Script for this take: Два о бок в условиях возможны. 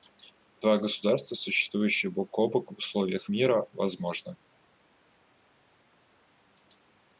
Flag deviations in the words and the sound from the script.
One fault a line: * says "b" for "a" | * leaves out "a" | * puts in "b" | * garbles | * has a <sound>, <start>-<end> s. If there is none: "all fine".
* puts in "государства существующие бок"
* puts in "мира"